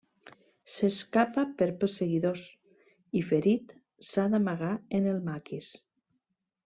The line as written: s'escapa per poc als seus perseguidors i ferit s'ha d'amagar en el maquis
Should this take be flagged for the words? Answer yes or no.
yes